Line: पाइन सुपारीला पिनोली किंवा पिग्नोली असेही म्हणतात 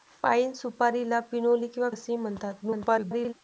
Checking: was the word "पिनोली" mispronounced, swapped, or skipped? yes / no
no